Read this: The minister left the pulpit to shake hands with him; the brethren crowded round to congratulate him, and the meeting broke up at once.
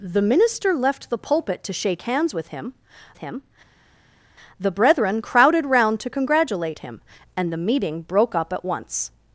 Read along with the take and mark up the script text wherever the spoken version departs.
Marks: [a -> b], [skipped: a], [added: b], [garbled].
The minister left the pulpit to shake hands with him; [added: him] the brethren crowded round to congratulate him, and the meeting broke up at once.